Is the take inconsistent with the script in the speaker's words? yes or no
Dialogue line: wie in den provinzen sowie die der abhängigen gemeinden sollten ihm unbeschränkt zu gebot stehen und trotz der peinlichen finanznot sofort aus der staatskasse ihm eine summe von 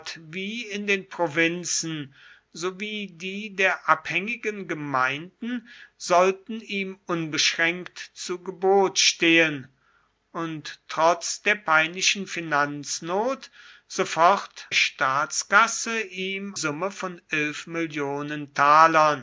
yes